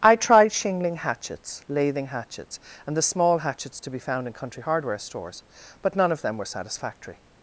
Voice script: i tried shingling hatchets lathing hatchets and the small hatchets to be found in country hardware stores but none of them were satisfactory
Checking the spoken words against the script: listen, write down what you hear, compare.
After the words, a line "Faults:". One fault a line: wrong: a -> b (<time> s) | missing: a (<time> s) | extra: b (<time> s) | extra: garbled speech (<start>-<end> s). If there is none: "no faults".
i tried shingling hatchets lathing hatchets and the small hatchets to be found in country hardware stores but none of them were satisfactory
Faults:
no faults